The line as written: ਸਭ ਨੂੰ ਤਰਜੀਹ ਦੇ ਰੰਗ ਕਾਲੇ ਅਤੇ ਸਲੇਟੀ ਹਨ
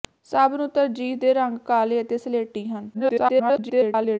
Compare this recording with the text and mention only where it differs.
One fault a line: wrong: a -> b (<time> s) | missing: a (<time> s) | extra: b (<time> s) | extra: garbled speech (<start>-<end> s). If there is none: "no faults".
extra: garbled speech (2.9-4.2 s)